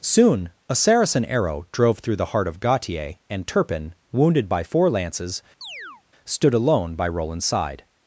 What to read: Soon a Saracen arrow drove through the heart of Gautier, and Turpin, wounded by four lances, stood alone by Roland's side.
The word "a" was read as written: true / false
true